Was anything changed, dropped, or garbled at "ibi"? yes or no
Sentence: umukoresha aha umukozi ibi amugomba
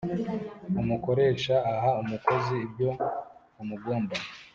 yes